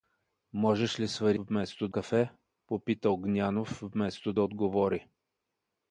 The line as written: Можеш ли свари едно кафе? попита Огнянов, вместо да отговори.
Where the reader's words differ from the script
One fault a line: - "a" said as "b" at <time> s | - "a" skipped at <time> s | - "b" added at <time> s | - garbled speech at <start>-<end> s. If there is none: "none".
- "едно" said as "вместо" at 1.4 s